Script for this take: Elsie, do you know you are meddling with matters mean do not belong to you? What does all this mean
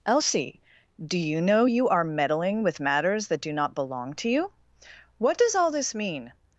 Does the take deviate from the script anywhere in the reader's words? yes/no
yes